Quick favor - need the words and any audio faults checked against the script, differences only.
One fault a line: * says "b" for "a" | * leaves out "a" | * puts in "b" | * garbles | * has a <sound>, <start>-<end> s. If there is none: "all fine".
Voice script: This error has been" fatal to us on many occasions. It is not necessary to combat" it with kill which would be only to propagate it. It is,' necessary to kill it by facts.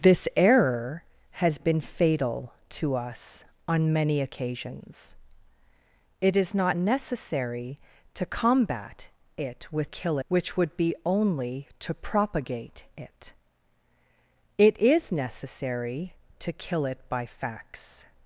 all fine